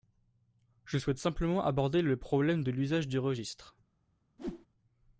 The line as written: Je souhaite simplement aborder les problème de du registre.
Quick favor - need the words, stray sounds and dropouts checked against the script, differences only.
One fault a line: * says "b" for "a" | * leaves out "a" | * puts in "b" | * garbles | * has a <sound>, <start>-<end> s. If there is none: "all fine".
* says "le" for "les"
* puts in "l'usage"
* has a whoosh, 4.4-4.7 s